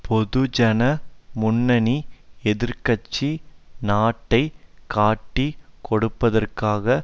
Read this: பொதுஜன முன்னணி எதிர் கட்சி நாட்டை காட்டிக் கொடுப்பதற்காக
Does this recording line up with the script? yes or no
yes